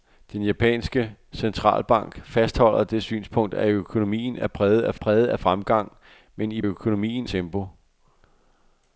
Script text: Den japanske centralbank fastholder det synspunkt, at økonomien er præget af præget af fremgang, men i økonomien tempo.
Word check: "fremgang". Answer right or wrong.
right